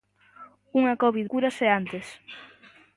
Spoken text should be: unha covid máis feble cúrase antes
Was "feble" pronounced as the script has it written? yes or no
no